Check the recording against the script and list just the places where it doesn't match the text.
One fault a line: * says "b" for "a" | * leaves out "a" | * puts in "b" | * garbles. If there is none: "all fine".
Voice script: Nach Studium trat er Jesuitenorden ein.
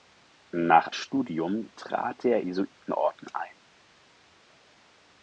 all fine